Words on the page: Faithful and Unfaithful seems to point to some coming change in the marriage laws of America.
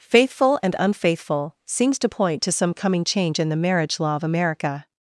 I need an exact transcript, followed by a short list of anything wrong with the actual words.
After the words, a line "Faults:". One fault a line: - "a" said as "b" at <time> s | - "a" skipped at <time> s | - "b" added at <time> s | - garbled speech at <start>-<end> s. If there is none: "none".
Faithful and Unfaithful seems to point to some coming change in the marriage law of America.
Faults:
- "laws" said as "law" at 4.0 s